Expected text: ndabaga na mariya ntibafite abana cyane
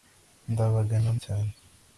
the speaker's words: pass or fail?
fail